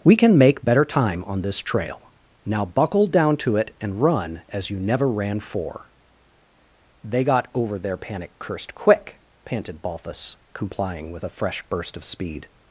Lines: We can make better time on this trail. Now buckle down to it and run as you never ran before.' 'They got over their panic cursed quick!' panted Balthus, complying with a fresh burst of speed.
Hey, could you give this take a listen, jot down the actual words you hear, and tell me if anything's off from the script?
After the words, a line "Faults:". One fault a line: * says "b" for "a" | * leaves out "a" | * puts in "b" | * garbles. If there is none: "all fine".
We can make better time on this trail. Now buckle down to it and run as you never ran for.' 'They got over their panic cursed quick!' panted Balthus, complying with a fresh burst of speed.
Faults:
* says "for" for "before"